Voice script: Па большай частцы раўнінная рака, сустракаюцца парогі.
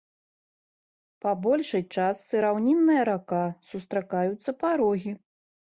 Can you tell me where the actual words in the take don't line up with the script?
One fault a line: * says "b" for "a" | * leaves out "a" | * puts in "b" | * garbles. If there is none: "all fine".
all fine